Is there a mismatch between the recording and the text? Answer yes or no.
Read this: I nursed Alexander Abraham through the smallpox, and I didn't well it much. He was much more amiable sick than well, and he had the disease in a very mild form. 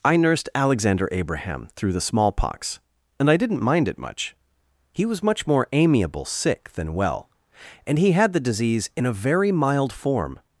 yes